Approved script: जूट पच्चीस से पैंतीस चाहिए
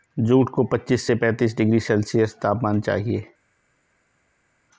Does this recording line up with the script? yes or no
no